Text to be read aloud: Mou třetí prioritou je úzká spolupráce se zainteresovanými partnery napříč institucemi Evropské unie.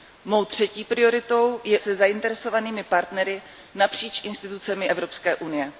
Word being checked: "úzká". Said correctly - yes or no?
no